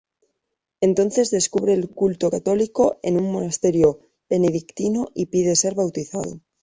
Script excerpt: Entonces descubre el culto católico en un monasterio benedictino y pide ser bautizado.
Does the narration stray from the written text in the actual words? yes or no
no